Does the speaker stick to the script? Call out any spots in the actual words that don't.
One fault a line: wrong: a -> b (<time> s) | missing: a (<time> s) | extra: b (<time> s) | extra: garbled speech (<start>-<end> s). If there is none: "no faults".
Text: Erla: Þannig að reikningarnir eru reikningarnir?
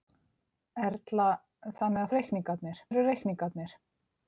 no faults